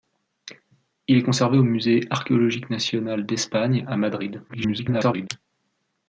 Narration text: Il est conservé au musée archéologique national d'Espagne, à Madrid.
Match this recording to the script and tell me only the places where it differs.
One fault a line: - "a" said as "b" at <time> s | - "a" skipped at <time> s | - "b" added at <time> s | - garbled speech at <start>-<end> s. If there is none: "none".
- garbled speech at 4.5-5.3 s